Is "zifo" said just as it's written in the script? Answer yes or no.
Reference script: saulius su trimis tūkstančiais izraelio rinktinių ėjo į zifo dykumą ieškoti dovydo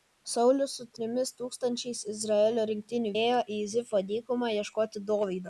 yes